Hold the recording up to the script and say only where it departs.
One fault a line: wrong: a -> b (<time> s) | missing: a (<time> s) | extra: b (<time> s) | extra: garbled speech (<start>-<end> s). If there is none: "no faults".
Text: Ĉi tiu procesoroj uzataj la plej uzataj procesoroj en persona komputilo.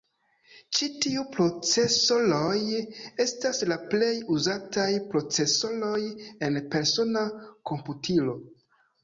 wrong: uzataj -> estas (3.2 s)